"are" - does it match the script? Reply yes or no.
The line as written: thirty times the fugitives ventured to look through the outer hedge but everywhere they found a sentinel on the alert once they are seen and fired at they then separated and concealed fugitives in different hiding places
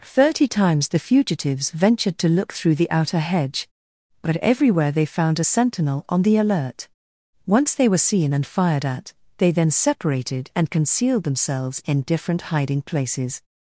no